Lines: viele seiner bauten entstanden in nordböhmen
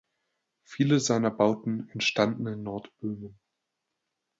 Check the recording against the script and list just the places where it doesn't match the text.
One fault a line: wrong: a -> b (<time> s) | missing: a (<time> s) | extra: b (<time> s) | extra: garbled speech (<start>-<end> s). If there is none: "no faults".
no faults